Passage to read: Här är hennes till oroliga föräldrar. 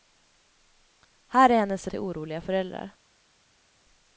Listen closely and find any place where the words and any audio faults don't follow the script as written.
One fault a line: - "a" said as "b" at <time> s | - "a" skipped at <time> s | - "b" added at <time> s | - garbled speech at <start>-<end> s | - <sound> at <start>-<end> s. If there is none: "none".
none